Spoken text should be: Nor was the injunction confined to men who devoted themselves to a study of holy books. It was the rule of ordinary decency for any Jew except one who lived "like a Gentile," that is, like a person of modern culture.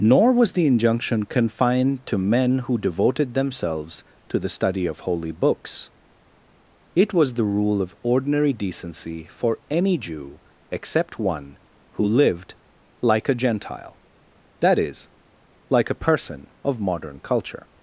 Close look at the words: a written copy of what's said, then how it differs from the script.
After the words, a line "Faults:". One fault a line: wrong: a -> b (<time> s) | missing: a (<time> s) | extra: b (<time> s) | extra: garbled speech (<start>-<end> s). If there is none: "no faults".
Nor was the injunction confined to men who devoted themselves to the study of holy books. It was the rule of ordinary decency for any Jew except one who lived "like a Gentile," that is, like a person of modern culture.
Faults:
wrong: a -> the (4.4 s)